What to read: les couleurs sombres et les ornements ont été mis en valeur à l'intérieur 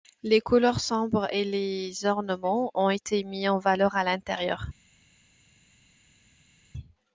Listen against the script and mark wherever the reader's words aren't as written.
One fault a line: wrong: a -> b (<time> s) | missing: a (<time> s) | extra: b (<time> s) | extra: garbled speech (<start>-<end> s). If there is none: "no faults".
no faults